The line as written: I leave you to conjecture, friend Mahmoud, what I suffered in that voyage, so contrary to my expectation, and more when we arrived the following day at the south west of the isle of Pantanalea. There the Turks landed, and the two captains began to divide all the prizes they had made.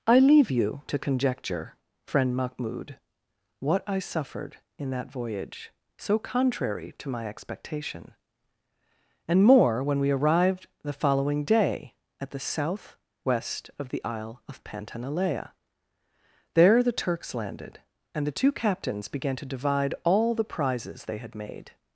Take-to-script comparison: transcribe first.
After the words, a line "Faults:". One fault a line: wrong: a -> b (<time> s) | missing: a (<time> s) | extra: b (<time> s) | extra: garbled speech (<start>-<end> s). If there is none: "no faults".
I leave you to conjecture, friend Mahmoud, what I suffered in that voyage, so contrary to my expectation, and more when we arrived the following day at the south west of the isle of Pantanalea. There the Turks landed, and the two captains began to divide all the prizes they had made.
Faults:
no faults